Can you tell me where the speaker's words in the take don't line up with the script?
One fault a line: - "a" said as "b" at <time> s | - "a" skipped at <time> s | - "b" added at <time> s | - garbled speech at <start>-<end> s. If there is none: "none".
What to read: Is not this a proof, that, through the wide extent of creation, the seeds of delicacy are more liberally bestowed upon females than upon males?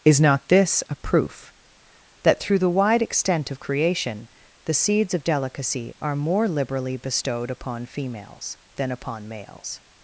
none